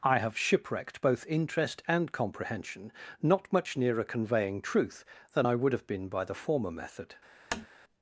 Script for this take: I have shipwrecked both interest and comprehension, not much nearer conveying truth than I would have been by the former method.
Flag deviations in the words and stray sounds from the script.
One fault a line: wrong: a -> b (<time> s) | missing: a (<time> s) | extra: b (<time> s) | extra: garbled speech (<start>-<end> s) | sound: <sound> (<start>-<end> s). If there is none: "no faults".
sound: tap (7.5-7.7 s)